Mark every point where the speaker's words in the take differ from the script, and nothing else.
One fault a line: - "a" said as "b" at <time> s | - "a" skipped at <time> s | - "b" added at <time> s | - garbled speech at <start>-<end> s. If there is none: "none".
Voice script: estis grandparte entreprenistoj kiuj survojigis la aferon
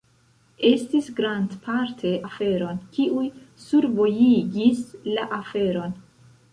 - "entreprenistoj" said as "aferon" at 2.3 s